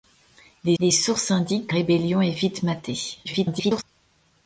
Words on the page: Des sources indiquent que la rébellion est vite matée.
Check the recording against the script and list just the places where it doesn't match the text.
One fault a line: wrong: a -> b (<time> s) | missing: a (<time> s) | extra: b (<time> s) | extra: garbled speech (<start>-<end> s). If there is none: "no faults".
extra: des (0.8 s)
missing: la (1.7 s)
extra: garbled speech (3.2-3.8 s)